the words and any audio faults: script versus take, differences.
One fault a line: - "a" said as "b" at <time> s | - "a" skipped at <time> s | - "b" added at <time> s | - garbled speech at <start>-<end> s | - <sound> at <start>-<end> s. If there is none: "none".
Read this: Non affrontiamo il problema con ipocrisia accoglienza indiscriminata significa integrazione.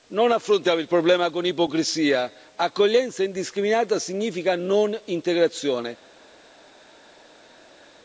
- "non" added at 4.6 s